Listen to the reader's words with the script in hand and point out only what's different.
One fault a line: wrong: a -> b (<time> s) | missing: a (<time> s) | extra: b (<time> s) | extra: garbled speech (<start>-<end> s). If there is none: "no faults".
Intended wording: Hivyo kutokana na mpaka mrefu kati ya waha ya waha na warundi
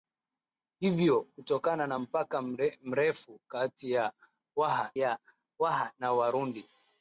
no faults